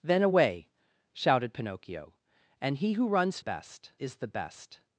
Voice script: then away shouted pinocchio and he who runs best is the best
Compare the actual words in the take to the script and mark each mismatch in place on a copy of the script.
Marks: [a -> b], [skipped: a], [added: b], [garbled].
then away shouted pinocchio and he who runs best is the best